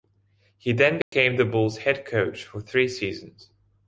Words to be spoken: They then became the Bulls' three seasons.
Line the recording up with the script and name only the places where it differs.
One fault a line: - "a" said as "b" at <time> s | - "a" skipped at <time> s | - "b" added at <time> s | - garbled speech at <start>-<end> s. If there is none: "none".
- "They" said as "He" at 0.6 s
- "head coach for" added at 1.8 s